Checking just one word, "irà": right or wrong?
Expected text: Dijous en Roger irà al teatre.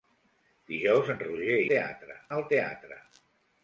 wrong